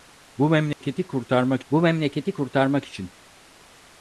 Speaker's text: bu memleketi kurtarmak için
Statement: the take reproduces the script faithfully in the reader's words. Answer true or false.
false